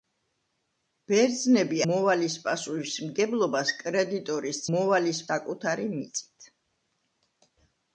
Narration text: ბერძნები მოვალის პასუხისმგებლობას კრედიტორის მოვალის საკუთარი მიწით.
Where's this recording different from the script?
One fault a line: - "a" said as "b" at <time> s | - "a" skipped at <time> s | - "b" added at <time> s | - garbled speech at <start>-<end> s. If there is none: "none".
none